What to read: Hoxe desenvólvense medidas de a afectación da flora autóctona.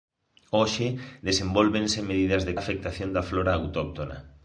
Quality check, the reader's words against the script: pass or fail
pass